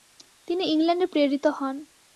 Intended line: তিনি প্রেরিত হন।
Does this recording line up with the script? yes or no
no